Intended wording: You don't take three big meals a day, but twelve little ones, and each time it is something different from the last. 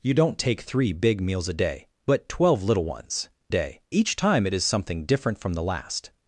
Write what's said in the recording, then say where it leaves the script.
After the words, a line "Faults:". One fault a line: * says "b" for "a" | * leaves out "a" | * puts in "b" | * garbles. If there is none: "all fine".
You don't take three big meals a day, but twelve little ones, day each time it is something different from the last.
Faults:
* says "day" for "and"